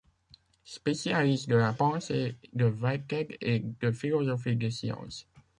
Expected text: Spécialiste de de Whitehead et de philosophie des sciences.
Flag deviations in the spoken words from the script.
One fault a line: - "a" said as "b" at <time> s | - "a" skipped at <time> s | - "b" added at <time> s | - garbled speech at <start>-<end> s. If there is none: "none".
- "la pensée" added at 1.6 s